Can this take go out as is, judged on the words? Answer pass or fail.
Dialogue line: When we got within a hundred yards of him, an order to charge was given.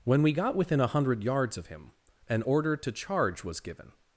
pass